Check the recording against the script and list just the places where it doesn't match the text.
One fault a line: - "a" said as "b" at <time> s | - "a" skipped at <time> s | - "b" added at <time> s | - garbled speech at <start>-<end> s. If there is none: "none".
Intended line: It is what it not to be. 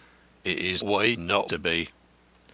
none